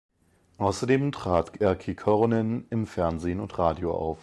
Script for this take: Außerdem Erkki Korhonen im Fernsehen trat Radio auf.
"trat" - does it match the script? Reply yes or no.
no